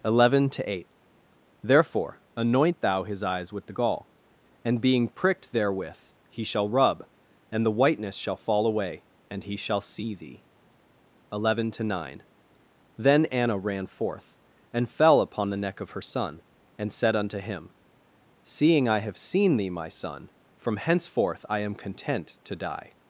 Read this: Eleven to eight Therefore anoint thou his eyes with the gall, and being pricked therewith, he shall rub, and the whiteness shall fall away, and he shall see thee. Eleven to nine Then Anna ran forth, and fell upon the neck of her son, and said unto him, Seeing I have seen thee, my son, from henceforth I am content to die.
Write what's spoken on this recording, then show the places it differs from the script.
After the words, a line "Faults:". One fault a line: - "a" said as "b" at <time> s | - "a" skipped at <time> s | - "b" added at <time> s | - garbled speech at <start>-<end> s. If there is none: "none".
Eleven to eight Therefore anoint thou his eyes with the gall, and being pricked therewith, he shall rub, and the whiteness shall fall away, and he shall see thee. Eleven to nine Then Anna ran forth, and fell upon the neck of her son, and said unto him, Seeing I have seen thee, my son, from henceforth I am content to die.
Faults:
none